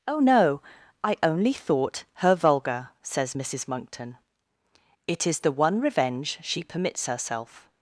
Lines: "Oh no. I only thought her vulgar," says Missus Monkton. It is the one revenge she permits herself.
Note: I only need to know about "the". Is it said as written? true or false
true